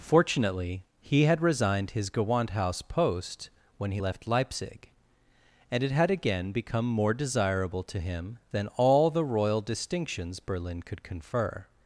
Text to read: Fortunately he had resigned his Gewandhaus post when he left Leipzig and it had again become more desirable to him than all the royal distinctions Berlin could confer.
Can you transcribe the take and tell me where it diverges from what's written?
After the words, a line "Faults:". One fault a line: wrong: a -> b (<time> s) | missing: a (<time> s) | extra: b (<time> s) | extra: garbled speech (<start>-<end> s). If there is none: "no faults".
Fortunately he had resigned his Gewandhaus post when he left Leipzig and it had again become more desirable to him than all the royal distinctions Berlin could confer.
Faults:
no faults